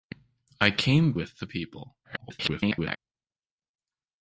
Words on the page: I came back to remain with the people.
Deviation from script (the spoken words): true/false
true